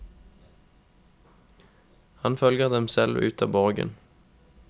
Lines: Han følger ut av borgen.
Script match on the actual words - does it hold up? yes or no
no